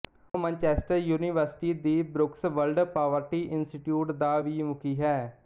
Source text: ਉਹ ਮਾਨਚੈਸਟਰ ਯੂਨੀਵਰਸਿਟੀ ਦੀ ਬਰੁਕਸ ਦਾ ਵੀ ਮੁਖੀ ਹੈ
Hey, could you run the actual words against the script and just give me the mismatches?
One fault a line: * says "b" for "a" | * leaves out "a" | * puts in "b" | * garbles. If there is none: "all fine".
* puts in "ਵਰਲਡ ਪਾਵਰਟੀ ਇੰਸਟੀਚਿਊਟ"